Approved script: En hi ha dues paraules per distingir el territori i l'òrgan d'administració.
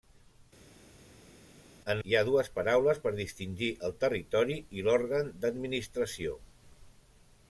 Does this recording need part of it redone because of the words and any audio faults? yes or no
no